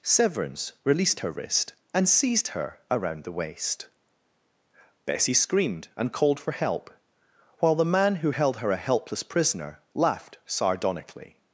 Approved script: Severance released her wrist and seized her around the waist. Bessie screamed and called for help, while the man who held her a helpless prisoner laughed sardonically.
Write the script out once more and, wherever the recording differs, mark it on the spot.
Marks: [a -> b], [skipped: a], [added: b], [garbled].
Severance released her wrist and seized her around the waist. Bessie screamed and called for help, while the man who held her a helpless prisoner laughed sardonically.